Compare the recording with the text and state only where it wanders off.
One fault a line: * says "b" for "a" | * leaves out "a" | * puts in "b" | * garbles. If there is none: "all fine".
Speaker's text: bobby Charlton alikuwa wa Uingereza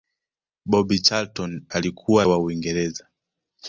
all fine